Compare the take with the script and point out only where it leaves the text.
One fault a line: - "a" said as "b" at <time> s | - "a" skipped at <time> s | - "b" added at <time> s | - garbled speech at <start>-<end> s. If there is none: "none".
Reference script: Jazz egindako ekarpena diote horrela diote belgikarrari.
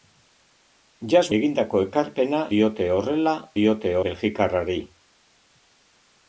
none